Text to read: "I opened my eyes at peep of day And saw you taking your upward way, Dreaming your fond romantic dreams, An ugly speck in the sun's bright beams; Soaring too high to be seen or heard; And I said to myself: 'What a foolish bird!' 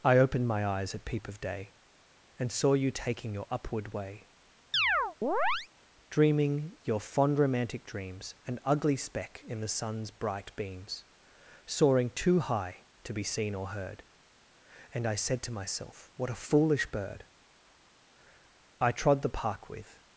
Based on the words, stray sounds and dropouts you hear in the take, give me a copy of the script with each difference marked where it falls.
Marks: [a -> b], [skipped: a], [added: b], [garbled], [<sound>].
"I opened my eyes at peep of day And saw you taking your upward way, [chirp] Dreaming your fond romantic dreams, An ugly speck in the sun's bright beams; Soaring too high to be seen or heard; And I said to myself: 'What a foolish bird!' [added: I trod the park with]